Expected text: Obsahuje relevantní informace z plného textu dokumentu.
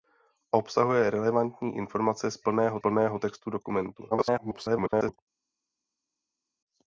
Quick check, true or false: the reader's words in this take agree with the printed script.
false